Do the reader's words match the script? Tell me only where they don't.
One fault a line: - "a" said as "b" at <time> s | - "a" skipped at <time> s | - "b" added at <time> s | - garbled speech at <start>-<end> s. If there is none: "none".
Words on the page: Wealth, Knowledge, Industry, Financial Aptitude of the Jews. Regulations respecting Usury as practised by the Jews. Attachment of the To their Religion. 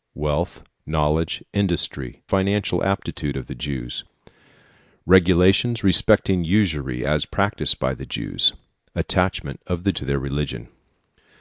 none